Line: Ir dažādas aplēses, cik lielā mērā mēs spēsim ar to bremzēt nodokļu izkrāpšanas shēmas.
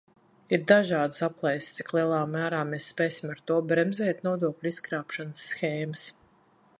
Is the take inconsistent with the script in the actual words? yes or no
no